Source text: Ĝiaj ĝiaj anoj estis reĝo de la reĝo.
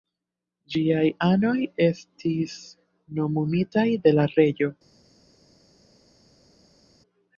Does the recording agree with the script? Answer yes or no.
no